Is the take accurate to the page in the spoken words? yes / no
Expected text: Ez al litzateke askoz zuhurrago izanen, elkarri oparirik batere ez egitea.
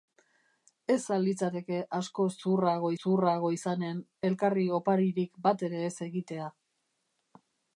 no